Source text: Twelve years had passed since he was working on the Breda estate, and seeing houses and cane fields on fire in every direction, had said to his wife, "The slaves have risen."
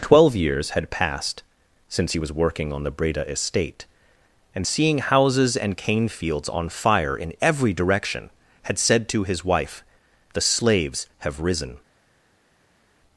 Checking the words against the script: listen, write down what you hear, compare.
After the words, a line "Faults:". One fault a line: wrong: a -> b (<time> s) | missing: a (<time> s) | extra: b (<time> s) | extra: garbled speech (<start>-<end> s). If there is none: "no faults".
Twelve years had passed since he was working on the Breda estate, and seeing houses and cane fields on fire in every direction, had said to his wife, "The slaves have risen."
Faults:
no faults